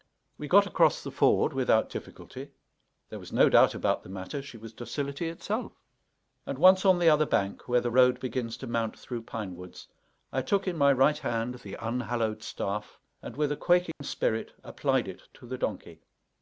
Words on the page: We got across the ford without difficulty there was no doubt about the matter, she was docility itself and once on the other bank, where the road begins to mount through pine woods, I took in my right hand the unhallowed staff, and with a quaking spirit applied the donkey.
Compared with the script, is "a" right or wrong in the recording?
right